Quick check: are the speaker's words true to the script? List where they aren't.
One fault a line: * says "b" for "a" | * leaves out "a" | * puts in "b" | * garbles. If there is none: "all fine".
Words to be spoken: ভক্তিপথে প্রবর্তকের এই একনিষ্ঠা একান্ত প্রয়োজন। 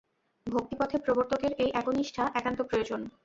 all fine